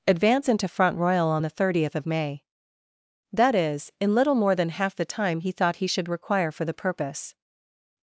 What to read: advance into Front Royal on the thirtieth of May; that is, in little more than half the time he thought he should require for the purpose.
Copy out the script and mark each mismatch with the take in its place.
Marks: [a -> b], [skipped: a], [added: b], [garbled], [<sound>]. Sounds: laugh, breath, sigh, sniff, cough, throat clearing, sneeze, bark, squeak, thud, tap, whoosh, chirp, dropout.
advance into Front Royal on the thirtieth of May; that is, in little more than half the time he thought he should require for the purpose.